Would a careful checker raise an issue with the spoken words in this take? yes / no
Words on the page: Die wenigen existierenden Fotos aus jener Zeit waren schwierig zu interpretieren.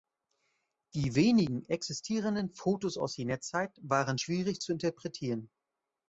no